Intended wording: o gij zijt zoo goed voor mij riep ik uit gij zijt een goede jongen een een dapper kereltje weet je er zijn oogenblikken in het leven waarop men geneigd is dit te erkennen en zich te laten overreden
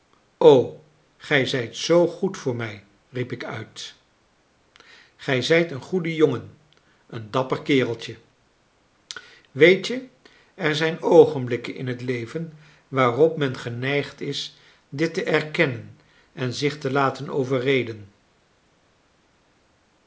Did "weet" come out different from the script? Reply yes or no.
no